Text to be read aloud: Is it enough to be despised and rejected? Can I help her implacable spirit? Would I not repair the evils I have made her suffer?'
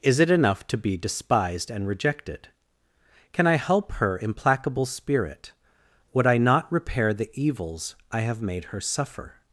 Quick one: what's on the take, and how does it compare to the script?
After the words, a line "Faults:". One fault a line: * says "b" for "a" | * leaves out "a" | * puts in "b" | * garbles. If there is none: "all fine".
Is it enough to be despised and rejected? Can I help her implacable spirit? Would I not repair the evils I have made her suffer?'
Faults:
all fine